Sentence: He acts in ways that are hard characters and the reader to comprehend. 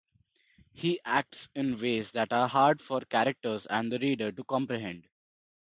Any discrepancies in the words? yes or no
yes